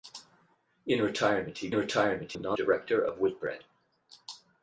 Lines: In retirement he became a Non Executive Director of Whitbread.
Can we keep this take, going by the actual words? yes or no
no